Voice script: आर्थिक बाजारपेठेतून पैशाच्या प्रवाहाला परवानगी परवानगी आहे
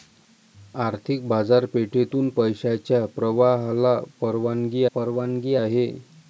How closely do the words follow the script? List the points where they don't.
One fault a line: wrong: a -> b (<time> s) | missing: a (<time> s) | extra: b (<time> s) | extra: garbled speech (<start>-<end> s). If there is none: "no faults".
no faults